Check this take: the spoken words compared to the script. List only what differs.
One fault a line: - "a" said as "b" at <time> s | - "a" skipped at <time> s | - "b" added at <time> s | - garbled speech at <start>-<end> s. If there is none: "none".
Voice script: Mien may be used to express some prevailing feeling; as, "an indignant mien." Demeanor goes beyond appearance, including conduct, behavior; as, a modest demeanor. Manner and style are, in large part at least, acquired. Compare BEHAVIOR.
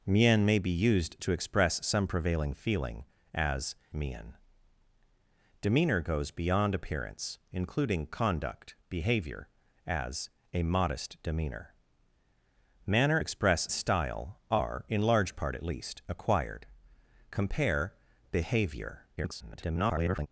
- "an indignant" skipped at 3.8 s
- "and" said as "express" at 13.2 s
- garbled speech at 19.2-20.3 s